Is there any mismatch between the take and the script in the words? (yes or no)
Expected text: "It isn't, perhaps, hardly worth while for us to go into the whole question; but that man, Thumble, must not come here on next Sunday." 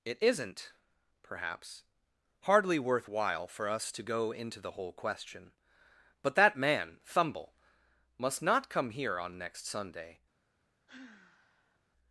no